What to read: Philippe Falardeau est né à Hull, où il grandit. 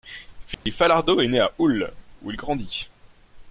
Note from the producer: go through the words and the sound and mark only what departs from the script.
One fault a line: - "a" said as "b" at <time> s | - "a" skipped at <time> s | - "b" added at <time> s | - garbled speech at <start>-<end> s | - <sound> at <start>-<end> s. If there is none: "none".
- dropout at 0.5-0.7 s